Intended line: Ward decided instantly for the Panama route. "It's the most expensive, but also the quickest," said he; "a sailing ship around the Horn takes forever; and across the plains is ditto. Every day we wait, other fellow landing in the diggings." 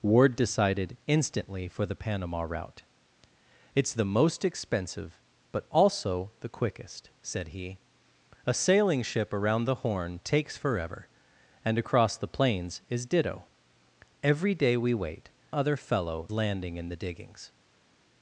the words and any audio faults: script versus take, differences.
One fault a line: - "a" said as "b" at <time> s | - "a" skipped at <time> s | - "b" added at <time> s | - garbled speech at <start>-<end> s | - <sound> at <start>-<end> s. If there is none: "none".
none